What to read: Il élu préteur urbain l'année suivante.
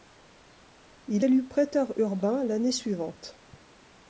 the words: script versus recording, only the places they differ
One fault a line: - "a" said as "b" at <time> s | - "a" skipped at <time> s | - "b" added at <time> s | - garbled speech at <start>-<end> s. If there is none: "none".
none